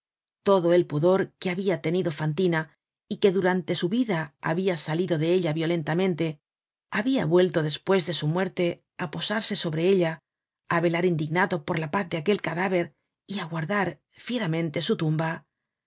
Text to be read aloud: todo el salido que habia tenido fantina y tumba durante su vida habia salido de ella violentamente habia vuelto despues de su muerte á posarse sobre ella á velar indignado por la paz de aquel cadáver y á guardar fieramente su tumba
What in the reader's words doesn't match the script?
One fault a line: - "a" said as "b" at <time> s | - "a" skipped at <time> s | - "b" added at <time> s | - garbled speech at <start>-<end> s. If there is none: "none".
- "salido" said as "pudor" at 0.9 s
- "tumba" said as "que" at 3.2 s